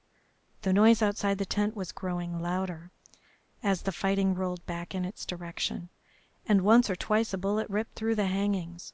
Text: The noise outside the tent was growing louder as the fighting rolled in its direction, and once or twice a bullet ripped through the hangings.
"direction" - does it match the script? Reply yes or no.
yes